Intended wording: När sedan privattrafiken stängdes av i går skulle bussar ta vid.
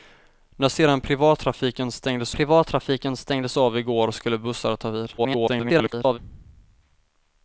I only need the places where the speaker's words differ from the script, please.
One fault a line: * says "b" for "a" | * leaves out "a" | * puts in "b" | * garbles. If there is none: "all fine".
* puts in "privattrafiken stängdes"
* garbles